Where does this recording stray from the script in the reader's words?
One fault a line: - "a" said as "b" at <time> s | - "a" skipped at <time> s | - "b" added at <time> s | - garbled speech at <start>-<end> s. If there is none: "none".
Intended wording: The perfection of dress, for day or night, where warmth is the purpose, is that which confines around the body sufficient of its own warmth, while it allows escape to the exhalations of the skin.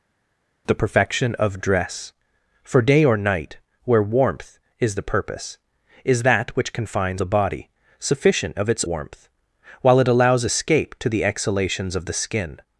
- "around" skipped at 7.2 s
- "own" skipped at 8.8 s